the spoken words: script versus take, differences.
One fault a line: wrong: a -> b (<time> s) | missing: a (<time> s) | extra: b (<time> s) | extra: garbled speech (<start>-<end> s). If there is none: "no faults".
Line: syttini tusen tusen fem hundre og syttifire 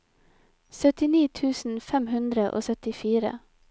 missing: tusen (1.8 s)